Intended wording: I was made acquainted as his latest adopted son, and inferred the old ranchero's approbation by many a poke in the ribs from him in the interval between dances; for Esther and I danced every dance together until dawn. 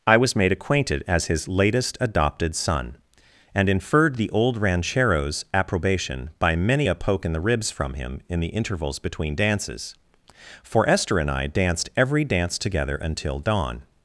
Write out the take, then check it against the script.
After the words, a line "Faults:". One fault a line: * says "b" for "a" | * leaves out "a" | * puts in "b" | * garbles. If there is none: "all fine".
I was made acquainted as his latest adopted son, and inferred the old ranchero's approbation by many a poke in the ribs from him in the intervals between dances; for Esther and I danced every dance together until dawn.
Faults:
* says "intervals" for "interval"